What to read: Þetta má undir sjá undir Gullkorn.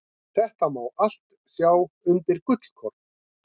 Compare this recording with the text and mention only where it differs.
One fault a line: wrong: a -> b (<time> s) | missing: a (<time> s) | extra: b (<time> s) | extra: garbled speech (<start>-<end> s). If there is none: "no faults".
wrong: undir -> allt (1.1 s)